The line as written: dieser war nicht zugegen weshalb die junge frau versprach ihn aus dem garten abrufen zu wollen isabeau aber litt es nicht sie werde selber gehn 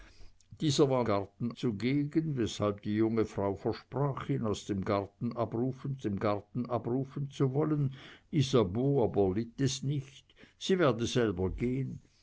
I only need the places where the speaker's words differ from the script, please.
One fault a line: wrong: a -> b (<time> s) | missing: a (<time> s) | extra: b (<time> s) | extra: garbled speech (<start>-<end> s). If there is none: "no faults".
wrong: nicht -> garten (1.0 s)
extra: dem garten abrufen (6.0 s)